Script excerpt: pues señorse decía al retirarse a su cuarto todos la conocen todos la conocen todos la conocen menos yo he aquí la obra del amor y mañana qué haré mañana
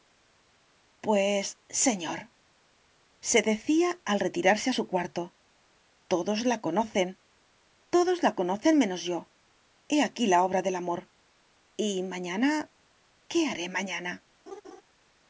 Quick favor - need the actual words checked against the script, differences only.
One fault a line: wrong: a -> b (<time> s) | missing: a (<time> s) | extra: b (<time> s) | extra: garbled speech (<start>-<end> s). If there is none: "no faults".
missing: todos la conocen (8.8 s)